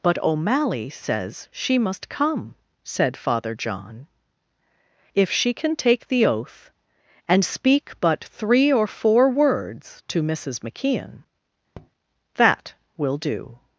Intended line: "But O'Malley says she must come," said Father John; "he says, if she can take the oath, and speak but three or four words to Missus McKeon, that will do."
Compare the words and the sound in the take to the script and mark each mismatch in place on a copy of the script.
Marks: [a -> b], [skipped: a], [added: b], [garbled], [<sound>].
"But O'Malley says she must come," said Father John; [skipped: "he says,] if she can take the oath, and speak but three or four words to Missus McKeon, [tap] that will do."